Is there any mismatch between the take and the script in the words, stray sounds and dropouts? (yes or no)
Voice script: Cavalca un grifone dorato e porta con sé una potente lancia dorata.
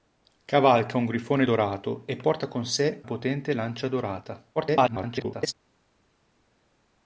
yes